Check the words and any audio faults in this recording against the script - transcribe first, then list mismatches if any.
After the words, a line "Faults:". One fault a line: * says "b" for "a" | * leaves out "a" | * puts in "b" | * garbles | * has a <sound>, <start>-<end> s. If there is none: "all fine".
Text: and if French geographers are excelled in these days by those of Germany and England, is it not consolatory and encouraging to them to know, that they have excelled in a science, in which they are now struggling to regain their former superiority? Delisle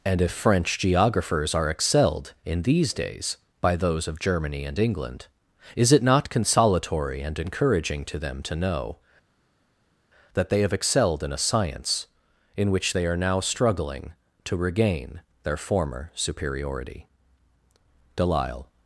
and if French geographers are excelled in these days by those of Germany and England, is it not consolatory and encouraging to them to know, that they have excelled in a science, in which they are now struggling to regain their former superiority? Delisle
Faults:
all fine